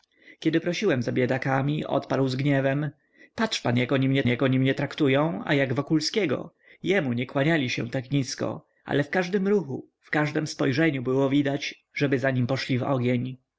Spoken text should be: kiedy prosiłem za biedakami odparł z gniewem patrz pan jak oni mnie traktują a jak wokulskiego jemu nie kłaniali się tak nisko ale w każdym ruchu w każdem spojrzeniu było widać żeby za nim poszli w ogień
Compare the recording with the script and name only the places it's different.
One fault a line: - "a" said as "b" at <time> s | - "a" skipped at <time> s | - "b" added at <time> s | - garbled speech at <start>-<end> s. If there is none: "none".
- "jak oni mnie" added at 4.3 s